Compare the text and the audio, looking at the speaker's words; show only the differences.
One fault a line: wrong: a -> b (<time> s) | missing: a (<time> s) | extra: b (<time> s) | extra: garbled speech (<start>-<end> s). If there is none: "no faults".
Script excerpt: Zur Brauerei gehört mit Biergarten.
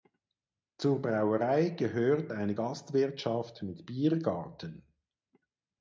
extra: eine Gastwirtschaft (2.3 s)